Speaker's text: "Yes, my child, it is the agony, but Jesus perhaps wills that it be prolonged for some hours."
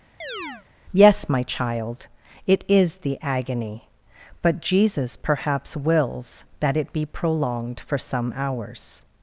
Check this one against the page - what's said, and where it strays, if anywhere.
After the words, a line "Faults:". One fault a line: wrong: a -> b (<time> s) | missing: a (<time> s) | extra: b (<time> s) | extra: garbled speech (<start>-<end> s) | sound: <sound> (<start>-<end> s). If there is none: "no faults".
"Yes, my child, it is the agony, but Jesus perhaps wills that it be prolonged for some hours."
Faults:
sound: chirp (0.2-0.7 s)